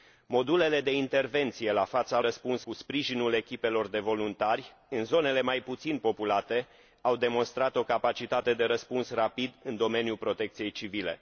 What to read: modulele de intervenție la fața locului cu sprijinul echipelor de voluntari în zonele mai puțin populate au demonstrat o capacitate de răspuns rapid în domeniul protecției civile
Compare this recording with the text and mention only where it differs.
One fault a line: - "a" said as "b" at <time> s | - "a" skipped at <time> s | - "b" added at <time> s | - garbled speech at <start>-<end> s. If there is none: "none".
- "locului" said as "răspuns" at 2.2 s